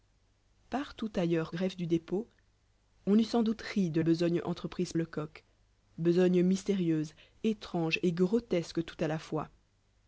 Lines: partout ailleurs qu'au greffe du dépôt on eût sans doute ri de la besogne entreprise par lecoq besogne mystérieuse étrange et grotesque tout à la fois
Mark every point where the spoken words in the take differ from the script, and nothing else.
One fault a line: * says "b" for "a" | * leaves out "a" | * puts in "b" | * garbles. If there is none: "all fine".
* leaves out "qu'au"
* leaves out "la"
* leaves out "par"